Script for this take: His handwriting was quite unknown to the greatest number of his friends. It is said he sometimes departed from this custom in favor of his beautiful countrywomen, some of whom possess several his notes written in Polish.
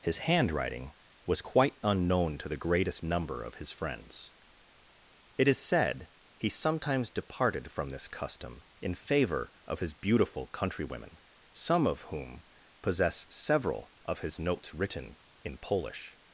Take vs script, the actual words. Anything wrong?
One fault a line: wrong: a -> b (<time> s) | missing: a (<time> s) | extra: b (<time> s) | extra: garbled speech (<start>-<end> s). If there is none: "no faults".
extra: of (14.0 s)